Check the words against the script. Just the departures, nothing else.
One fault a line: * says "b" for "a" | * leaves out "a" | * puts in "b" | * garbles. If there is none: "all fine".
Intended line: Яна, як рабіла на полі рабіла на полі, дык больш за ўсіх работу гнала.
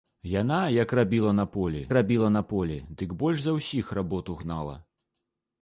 all fine